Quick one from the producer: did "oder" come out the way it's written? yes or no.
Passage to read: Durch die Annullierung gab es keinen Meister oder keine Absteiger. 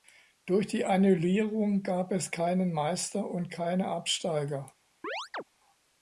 no